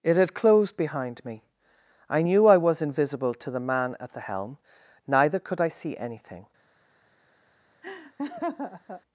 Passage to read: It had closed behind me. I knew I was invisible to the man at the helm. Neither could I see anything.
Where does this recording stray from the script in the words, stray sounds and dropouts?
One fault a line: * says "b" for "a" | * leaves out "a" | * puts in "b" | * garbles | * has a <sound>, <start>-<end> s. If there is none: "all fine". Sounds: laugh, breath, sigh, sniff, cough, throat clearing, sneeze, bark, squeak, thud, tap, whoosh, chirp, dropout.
* has a laugh, 7.8-9.0 s